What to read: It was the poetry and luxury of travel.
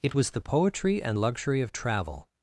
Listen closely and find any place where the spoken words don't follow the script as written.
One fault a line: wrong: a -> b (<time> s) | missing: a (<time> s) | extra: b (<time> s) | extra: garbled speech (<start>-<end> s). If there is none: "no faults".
no faults